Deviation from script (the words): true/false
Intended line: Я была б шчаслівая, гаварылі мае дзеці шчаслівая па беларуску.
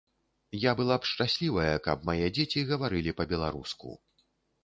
true